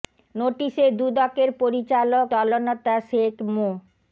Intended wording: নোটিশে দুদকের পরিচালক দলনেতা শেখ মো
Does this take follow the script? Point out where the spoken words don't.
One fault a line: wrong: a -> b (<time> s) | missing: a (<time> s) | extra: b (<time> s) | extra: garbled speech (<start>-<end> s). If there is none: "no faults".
no faults